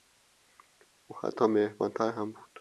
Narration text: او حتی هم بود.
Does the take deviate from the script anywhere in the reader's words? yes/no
yes